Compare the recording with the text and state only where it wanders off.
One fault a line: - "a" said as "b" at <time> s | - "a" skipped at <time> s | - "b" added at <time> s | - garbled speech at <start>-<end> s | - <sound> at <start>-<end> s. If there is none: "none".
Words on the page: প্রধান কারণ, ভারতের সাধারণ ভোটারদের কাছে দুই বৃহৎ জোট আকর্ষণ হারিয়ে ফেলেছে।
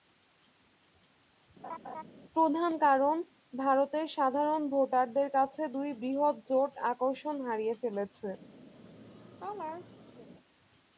- laugh at 1.6-2.0 s
- laugh at 8.7-10.3 s